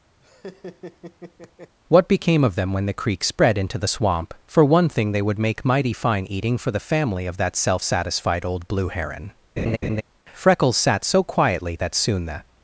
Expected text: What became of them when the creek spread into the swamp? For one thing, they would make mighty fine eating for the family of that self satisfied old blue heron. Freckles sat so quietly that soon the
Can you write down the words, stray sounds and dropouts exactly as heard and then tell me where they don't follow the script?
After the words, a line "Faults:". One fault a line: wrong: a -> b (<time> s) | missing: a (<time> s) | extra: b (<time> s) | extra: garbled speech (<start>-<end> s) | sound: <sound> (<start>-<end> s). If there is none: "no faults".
What became of them when the creek spread into the swamp? For one thing, they would make mighty fine eating for the family of that self satisfied old blue heron. Freckles sat so quietly that soon the
Faults:
sound: laugh (0.2-1.7 s)
sound: laugh (9.6-10.0 s)